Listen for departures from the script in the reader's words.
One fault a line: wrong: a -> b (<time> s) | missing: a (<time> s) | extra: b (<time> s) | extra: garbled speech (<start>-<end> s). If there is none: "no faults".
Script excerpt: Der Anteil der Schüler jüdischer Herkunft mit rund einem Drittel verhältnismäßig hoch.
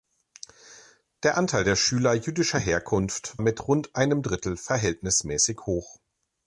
no faults